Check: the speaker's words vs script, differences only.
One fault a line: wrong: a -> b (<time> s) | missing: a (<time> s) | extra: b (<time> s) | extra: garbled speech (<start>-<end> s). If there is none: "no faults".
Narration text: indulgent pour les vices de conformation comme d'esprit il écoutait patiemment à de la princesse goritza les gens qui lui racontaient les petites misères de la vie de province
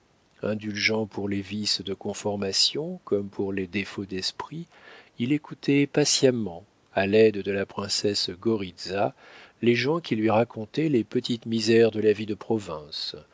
extra: pour les défauts (3.3 s)
extra: l'aide (7.0 s)